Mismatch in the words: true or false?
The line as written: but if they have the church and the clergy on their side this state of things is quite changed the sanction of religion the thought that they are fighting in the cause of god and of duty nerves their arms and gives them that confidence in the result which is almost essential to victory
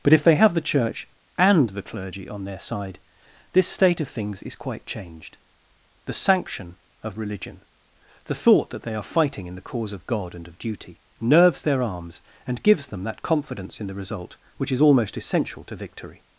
false